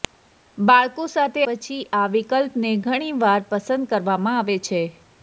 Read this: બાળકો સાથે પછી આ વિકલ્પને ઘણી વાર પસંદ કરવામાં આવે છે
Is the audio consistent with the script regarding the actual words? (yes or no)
yes